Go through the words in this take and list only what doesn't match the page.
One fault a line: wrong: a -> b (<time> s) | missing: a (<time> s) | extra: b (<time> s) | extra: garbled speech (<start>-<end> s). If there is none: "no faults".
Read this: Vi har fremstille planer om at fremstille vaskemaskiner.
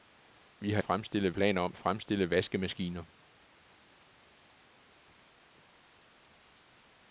no faults